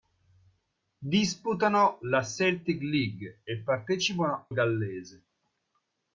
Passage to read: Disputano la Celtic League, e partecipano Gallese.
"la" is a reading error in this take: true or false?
false